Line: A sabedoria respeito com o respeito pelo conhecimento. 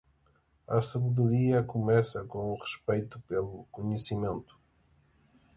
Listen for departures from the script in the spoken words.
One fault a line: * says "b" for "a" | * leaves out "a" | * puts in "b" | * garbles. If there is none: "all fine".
* says "começa" for "respeito"